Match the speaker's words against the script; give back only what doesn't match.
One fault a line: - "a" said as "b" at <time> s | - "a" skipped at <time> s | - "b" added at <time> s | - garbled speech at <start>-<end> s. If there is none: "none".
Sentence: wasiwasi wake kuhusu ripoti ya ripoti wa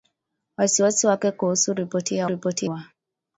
none